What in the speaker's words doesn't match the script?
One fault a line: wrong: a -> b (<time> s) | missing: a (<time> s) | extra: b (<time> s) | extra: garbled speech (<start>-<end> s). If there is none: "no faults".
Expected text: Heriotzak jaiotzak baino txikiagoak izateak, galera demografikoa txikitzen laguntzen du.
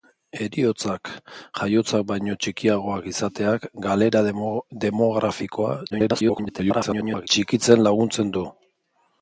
extra: garbled speech (5.9-7.3 s)